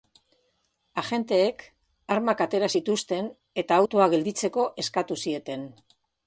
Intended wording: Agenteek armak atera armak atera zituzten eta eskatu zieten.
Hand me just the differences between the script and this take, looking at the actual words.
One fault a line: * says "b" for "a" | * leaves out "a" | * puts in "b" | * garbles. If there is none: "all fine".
* says "zituzten eta autoa gelditzeko" for "armak atera zituzten eta"